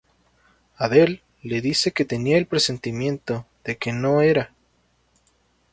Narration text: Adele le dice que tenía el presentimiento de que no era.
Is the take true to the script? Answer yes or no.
yes